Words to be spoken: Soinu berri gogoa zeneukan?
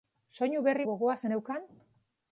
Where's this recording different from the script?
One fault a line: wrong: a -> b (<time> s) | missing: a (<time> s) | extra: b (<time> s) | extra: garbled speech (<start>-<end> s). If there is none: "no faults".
no faults